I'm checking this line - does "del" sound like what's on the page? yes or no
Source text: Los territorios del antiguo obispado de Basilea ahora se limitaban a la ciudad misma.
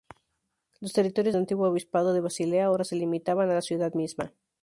no